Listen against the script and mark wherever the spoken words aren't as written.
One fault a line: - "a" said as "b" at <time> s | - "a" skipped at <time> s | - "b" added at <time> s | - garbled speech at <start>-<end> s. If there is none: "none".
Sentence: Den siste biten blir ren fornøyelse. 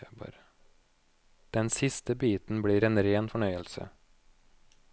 - "en" added at 2.8 s